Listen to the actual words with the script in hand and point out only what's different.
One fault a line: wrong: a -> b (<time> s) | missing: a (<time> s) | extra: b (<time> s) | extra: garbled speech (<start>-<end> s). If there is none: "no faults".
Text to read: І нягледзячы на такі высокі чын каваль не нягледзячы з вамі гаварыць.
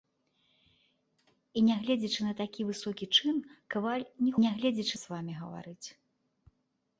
no faults